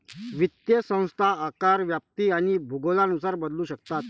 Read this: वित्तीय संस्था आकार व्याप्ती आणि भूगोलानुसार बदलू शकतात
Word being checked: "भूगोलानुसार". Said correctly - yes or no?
yes